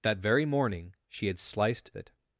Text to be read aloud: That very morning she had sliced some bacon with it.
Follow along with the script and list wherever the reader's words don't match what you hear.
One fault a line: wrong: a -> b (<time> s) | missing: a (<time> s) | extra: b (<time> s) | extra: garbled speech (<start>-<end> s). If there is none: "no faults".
missing: some bacon with (1.9 s)